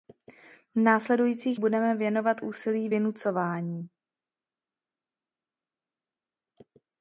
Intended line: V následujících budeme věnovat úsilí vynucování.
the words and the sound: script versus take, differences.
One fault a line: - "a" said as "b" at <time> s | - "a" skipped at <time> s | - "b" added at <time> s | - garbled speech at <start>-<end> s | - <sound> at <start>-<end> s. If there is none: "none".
none